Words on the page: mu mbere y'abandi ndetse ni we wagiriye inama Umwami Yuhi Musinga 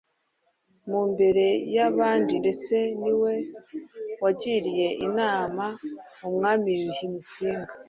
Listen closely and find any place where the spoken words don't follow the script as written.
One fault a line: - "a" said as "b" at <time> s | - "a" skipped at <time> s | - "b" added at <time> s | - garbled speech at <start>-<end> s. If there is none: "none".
none